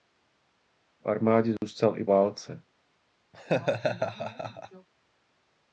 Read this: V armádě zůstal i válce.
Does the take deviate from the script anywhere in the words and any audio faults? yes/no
yes